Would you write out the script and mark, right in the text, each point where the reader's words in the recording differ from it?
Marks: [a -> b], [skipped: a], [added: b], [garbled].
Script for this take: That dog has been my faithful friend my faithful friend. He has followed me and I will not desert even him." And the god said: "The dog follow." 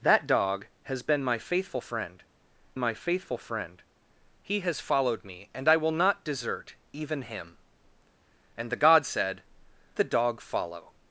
That dog has been my faithful friend my faithful friend. He has followed me and I will not desert even him." And the god said: "The dog follow."